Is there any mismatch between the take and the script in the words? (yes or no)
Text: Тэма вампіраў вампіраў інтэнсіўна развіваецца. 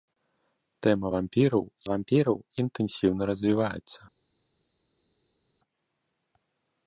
no